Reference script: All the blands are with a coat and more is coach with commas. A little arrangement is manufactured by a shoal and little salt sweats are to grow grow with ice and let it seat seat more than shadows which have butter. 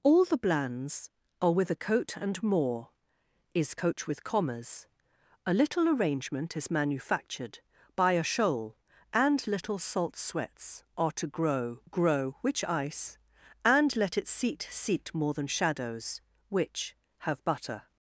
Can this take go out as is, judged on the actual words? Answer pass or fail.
fail